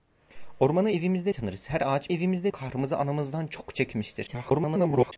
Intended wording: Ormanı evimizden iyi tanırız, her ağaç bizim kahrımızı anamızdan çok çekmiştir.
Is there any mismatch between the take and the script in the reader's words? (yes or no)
yes